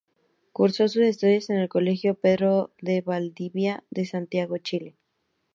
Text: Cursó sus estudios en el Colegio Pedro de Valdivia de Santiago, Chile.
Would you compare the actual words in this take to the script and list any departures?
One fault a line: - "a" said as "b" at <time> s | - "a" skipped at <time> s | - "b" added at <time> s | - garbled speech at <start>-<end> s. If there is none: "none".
none